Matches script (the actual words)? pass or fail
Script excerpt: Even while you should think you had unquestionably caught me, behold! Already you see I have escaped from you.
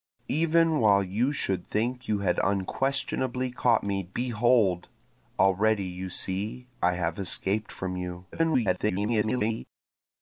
fail